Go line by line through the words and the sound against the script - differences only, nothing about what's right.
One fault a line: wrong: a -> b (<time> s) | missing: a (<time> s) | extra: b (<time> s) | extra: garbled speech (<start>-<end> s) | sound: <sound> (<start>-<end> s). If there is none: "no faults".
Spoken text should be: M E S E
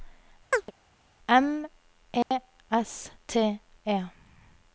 sound: chirp (0.5-0.7 s)
sound: dropout (2.2-2.3 s)
extra: T (3.3 s)